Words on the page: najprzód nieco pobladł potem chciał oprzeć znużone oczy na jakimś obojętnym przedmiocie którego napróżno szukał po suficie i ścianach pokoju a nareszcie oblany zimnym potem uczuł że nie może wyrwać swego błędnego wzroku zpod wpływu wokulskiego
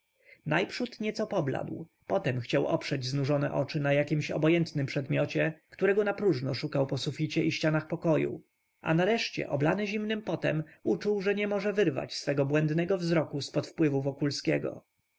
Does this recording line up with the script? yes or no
yes